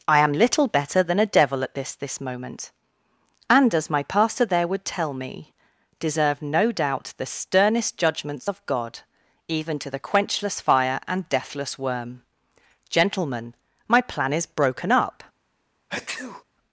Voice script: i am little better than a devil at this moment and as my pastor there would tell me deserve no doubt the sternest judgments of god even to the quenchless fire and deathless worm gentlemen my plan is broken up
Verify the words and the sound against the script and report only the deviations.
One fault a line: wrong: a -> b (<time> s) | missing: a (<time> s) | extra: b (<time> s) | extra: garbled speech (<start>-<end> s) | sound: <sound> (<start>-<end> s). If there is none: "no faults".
extra: this (1.9 s)
sound: sneeze (15.9-16.4 s)